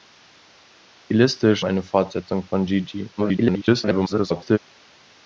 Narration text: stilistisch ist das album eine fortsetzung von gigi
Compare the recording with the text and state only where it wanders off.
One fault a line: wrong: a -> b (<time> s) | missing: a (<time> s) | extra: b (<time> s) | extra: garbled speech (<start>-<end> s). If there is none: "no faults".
missing: ist das album (1.6 s)
extra: garbled speech (3.2-4.6 s)